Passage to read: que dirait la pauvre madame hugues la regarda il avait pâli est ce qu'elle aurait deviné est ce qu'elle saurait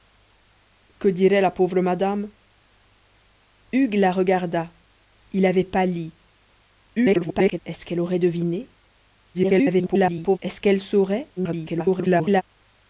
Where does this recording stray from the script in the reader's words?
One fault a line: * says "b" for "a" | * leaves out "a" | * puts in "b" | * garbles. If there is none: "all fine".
* garbles
* garbles
* garbles